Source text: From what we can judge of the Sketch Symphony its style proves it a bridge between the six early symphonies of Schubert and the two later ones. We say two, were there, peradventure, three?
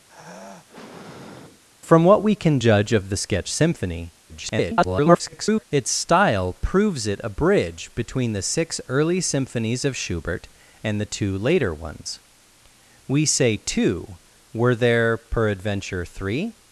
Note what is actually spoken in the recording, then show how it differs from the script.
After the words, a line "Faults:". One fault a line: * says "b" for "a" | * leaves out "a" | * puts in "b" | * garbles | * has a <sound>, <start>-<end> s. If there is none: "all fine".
From what we can judge of the Sketch Symphony [garbled] its style proves it a bridge between the six early symphonies of Schubert and the two later ones. We say two, were there, peradventure, three?
Faults:
* has a sigh, 0.1-1.6 s
* garbles